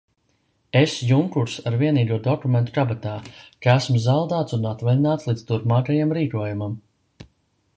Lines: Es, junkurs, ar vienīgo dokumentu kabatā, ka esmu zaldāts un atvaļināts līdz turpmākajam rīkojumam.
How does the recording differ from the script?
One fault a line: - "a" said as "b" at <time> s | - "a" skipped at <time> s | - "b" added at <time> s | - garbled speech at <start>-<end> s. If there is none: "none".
none